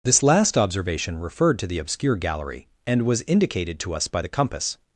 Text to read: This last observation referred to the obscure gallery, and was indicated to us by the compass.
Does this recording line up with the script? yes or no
yes